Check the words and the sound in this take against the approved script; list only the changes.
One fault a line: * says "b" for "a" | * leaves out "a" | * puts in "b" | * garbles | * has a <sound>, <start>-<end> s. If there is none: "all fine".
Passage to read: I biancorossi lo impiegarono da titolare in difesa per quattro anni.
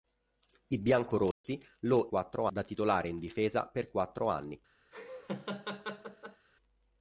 * has a dropout, 1.3-1.4 s
* says "quattro" for "impiegarono"
* has a laugh, 4.9-6.5 s